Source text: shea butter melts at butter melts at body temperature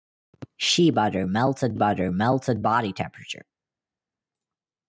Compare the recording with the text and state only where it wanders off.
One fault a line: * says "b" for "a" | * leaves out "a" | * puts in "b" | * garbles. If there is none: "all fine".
all fine